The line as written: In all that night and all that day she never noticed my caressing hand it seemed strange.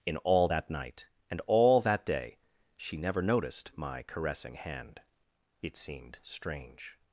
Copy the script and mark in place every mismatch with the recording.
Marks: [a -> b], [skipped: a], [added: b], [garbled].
In all that night and all that day she never noticed my caressing hand it seemed strange.